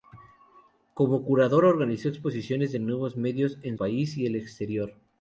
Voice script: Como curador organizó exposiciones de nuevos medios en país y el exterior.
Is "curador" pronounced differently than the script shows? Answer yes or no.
no